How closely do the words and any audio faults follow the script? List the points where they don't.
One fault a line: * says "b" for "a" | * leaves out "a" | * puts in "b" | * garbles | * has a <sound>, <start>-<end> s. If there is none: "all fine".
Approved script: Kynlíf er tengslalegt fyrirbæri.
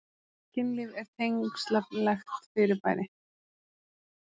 all fine